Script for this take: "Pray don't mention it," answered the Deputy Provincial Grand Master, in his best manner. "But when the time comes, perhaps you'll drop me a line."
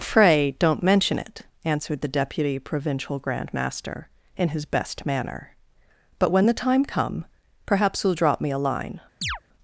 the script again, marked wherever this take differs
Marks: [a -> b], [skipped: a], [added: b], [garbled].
"Pray don't mention it," answered the Deputy Provincial Grand Master, in his best manner. "But when the time [comes, -> come] perhaps you'll drop me a line."